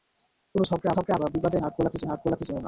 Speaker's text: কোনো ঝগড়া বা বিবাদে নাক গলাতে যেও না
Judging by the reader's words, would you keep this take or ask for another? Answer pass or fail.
fail